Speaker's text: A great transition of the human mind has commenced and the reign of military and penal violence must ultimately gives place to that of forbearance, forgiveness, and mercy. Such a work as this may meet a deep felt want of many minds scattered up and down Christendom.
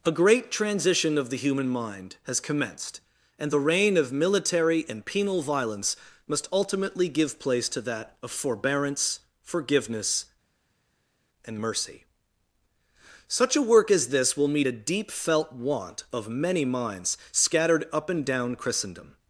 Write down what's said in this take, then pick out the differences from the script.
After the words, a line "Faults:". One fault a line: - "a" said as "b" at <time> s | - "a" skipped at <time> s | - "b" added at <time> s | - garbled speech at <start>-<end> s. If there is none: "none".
A great transition of the human mind has commenced and the reign of military and penal violence must ultimately give place to that of forbearance, forgiveness, and mercy. Such a work as this will meet a deep felt want of many minds scattered up and down Christendom.
Faults:
- "gives" said as "give" at 7.1 s
- "may" said as "will" at 14.3 s